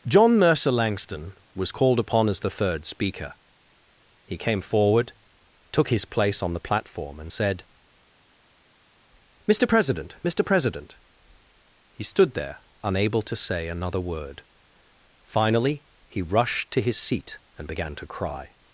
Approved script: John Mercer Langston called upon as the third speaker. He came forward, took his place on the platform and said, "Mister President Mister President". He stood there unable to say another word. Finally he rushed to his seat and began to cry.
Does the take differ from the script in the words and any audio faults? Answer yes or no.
yes